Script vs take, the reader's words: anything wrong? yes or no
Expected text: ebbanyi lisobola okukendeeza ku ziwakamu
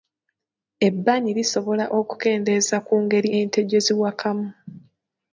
yes